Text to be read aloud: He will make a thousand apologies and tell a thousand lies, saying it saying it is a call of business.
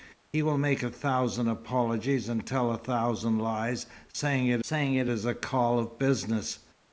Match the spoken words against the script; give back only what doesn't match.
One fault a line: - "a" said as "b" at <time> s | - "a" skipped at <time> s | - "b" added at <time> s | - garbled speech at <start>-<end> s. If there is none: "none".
none